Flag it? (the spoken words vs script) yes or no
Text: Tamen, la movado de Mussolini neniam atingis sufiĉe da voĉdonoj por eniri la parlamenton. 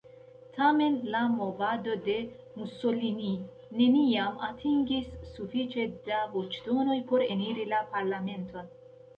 no